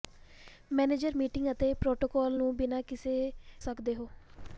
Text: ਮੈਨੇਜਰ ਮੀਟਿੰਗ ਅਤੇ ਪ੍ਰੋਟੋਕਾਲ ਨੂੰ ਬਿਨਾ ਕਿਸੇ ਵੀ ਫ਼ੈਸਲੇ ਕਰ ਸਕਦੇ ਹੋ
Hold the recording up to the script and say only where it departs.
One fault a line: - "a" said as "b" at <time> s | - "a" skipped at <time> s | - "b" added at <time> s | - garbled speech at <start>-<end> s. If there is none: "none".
- "ਵੀ ਫ਼ੈਸਲੇ ਕਰ" skipped at 3.3 s